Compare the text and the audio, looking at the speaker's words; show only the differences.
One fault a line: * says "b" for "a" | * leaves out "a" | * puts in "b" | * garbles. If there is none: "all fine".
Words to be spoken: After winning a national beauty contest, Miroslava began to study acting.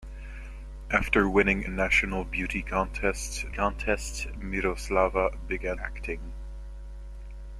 * leaves out "a"
* puts in "contest"
* leaves out "to study"